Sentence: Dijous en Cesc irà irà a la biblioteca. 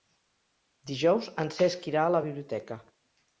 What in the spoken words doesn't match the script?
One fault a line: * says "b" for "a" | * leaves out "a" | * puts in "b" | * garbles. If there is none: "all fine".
* leaves out "irà"